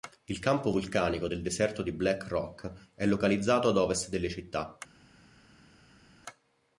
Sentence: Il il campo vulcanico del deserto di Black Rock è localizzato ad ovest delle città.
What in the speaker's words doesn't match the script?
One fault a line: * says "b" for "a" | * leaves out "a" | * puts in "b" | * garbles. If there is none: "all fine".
* leaves out "il"